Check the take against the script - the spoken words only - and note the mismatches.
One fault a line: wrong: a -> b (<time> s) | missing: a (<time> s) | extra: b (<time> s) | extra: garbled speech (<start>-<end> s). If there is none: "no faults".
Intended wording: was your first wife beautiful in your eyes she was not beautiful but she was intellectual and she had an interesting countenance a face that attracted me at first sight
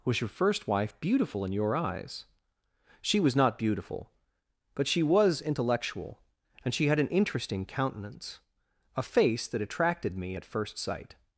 no faults